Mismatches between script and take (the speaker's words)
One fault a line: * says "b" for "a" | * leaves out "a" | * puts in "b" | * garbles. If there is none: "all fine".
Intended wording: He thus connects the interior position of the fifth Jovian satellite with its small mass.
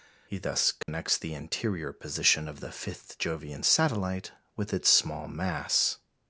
all fine